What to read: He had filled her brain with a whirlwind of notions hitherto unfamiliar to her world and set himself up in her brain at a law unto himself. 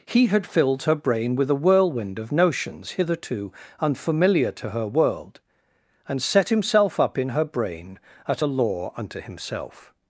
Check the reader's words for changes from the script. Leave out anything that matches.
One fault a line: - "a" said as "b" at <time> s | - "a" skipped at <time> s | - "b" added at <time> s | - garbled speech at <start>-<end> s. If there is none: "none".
none